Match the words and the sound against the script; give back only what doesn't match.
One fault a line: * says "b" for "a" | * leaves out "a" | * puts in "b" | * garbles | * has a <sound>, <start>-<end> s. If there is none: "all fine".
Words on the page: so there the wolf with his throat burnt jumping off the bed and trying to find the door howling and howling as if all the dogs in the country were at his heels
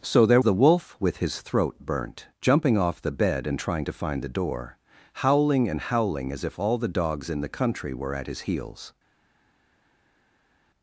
all fine